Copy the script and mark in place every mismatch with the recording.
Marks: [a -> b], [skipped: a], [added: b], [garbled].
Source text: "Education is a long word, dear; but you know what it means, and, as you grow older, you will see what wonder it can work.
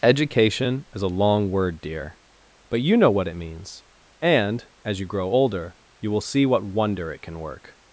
"Education is a long word, dear; but you know what it means, and, as you grow older, you will see what wonder it can work.